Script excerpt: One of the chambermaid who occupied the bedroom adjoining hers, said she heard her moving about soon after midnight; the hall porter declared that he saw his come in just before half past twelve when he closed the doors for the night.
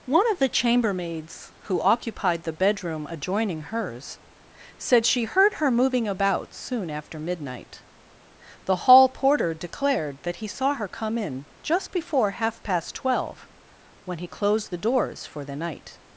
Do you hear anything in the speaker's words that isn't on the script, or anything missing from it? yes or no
yes